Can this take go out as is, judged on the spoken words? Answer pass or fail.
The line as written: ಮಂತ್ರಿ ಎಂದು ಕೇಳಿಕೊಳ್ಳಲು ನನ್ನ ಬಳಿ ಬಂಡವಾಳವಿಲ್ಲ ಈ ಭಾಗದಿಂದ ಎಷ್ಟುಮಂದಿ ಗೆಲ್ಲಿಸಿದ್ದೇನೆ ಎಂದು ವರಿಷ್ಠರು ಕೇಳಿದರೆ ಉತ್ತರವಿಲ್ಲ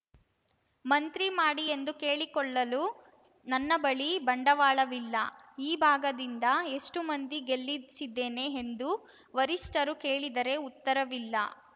fail